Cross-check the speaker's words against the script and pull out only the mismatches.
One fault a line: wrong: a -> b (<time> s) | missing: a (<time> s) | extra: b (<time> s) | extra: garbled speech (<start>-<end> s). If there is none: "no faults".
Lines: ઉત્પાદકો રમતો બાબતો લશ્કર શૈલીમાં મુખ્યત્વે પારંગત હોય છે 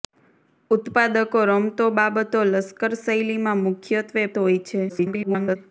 missing: પારંગત (4.3 s)
extra: garbled speech (4.9-5.6 s)